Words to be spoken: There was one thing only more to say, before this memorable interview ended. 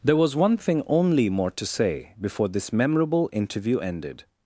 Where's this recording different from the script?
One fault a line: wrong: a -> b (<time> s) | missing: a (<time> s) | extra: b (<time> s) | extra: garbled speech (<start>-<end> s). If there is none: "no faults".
no faults